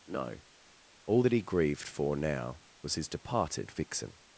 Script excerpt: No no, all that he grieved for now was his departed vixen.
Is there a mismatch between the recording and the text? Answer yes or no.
yes